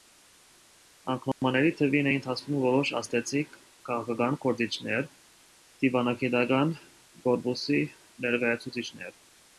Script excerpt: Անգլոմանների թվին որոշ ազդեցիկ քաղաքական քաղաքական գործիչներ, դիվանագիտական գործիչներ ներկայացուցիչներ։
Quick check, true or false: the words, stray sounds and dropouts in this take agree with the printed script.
false